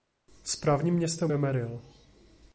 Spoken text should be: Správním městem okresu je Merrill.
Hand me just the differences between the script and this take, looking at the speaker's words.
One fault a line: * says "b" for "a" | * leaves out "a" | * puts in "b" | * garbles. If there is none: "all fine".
* leaves out "okresu"